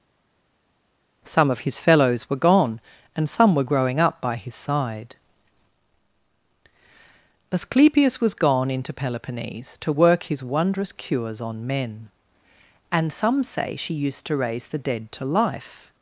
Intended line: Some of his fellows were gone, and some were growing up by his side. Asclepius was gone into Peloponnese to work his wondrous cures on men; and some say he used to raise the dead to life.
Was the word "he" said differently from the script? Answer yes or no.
yes